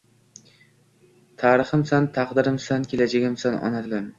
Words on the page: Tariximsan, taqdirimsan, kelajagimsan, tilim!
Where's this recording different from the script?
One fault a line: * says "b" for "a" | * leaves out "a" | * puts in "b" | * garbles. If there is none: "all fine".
* puts in "ona"